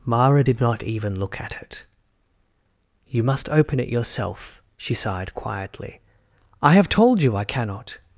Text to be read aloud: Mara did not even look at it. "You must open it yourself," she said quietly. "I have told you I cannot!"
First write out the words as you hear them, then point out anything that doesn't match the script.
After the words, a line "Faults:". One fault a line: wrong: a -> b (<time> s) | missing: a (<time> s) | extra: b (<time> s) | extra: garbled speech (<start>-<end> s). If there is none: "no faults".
Mara did not even look at it. "You must open it yourself," she sighed quietly. "I have told you I cannot!"
Faults:
wrong: said -> sighed (4.9 s)